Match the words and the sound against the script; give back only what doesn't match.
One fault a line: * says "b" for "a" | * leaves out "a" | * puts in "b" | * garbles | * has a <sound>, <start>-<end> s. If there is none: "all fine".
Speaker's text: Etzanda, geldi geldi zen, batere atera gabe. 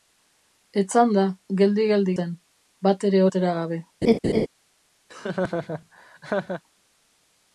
* has a laugh, 4.0-4.5 s
* has a laugh, 5.1-6.6 s